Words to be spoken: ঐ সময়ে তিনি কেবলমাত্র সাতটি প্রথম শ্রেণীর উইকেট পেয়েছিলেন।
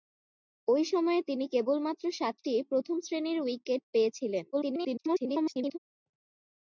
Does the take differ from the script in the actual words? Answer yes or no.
yes